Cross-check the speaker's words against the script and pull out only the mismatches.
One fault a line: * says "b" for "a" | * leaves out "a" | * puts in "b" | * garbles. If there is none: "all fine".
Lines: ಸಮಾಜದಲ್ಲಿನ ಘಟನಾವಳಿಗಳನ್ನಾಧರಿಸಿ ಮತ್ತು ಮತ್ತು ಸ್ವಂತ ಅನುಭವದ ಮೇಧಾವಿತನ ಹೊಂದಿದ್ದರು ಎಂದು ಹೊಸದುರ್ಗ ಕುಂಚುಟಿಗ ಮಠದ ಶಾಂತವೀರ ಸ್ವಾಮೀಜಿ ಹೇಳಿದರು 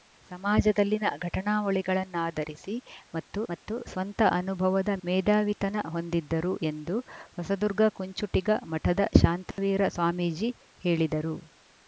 all fine